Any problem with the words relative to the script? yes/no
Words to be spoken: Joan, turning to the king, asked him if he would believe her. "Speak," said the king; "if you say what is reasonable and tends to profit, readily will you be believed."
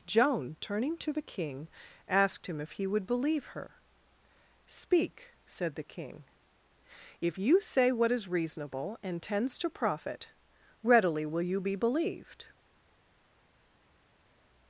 no